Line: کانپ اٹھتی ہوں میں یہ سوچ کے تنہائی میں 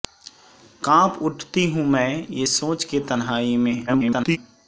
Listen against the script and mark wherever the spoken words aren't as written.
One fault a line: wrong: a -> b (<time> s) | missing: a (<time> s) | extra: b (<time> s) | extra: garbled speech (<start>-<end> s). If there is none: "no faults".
extra: garbled speech (3.9-4.4 s)